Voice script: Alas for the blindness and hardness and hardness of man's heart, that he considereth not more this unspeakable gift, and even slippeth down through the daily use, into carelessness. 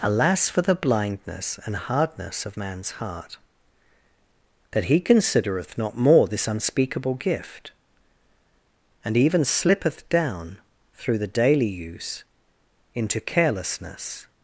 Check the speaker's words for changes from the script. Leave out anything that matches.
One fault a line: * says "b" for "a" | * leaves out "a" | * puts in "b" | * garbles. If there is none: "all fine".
* leaves out "and hardness"